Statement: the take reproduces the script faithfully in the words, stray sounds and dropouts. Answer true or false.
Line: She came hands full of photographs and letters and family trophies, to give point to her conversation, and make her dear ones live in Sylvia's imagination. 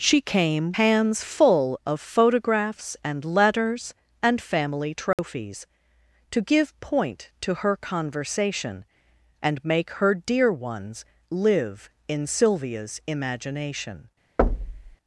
false